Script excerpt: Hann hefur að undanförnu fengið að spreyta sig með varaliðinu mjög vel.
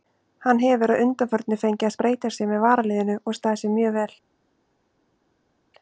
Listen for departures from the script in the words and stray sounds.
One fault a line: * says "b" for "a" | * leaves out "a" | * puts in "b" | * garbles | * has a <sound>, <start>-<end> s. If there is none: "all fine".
* puts in "og staðið sig"